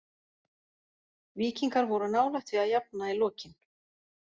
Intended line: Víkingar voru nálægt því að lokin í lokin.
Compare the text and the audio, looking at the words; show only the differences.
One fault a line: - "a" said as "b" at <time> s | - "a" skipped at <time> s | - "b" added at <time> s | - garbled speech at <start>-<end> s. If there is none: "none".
- "lokin" said as "jafna" at 2.7 s